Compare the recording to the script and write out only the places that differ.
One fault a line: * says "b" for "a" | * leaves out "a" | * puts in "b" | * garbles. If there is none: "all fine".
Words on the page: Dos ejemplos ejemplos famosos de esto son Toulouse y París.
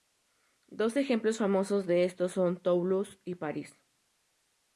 * leaves out "ejemplos"